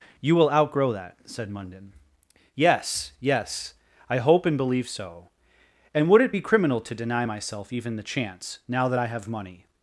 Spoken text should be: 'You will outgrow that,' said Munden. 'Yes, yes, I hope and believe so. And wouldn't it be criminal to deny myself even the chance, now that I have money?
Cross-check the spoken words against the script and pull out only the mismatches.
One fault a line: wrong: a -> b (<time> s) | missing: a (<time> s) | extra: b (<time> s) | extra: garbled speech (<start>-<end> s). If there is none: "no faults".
wrong: wouldn't -> would (6.1 s)